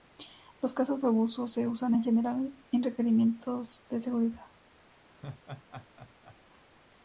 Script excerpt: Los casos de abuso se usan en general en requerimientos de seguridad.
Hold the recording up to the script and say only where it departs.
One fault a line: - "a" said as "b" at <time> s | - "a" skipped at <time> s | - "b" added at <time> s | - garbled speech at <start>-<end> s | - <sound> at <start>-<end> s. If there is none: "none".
- laugh at 5.1-6.4 s